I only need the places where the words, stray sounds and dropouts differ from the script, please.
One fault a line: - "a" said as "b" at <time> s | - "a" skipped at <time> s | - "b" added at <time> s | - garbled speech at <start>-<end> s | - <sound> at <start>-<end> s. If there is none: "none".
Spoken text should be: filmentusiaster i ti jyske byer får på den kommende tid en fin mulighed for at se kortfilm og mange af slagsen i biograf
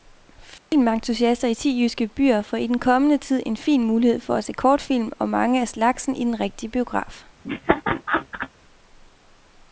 - dropout at 0.6-0.7 s
- "på" said as "i" at 2.6 s
- "den rigtige" added at 6.2 s
- laugh at 7.4-8.5 s